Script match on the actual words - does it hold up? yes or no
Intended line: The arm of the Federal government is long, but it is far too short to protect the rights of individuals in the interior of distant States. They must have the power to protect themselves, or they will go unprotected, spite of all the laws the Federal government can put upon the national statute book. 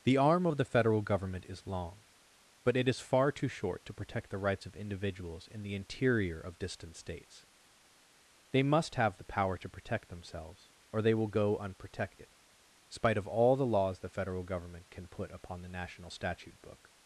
yes